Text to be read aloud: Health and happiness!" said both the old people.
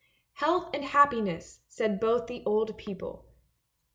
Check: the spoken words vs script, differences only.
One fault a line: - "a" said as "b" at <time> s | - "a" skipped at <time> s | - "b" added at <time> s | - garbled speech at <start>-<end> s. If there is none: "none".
none